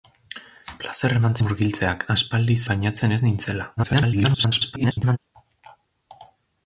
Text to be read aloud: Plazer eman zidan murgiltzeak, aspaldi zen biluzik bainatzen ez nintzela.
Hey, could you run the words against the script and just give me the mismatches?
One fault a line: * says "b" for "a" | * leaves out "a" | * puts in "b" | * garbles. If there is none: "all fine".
* leaves out "zidan"
* leaves out "zen biluzik"
* garbles